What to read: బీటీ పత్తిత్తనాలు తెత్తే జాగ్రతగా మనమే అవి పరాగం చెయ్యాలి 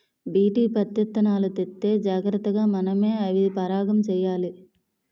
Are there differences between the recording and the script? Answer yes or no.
no